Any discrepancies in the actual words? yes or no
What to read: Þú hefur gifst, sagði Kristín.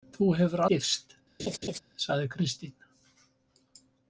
no